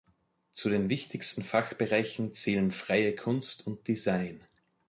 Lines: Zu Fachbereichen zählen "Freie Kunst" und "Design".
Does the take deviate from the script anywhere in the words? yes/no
yes